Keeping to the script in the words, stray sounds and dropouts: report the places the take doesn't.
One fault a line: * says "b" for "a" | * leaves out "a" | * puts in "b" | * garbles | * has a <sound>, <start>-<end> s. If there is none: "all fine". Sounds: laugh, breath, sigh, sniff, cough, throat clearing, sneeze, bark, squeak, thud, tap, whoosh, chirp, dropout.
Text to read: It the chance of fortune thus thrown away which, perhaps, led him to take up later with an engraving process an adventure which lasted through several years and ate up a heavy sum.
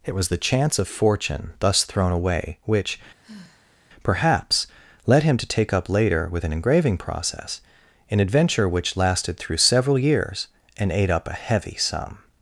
* puts in "was"
* has a sigh, 3.2-3.8 s